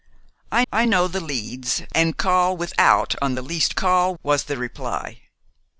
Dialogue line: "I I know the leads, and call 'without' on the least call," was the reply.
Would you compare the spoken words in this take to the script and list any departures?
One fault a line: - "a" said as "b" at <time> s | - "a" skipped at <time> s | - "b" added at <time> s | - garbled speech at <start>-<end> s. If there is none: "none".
none